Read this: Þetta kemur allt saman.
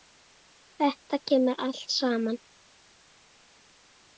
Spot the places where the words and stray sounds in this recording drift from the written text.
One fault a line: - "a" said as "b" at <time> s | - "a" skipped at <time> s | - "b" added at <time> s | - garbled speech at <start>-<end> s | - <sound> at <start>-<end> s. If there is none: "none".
none